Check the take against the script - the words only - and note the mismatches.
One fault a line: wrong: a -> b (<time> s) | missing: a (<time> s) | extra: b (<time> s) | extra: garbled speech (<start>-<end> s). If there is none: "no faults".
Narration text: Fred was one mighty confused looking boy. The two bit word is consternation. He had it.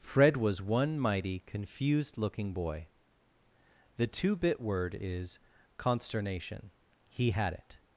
no faults